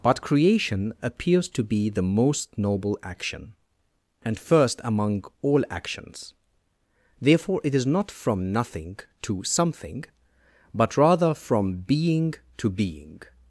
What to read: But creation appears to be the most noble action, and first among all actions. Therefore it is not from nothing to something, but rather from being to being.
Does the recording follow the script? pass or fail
pass